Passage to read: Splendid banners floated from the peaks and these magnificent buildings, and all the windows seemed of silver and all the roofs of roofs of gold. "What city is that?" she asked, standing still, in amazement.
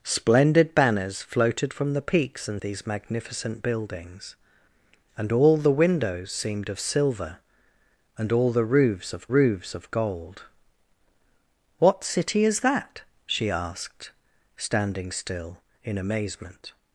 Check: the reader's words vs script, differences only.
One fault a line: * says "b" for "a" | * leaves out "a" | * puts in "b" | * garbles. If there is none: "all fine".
all fine